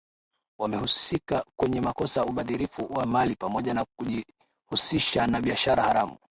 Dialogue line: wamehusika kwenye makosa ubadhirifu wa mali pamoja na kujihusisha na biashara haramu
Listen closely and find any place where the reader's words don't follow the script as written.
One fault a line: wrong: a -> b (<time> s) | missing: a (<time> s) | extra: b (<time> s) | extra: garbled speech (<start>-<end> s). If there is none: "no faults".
no faults